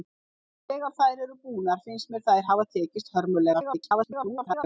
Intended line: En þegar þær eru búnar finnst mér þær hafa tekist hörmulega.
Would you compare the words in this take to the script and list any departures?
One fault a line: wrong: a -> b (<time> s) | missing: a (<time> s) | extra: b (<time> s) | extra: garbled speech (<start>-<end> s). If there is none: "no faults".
extra: garbled speech (3.5-4.6 s)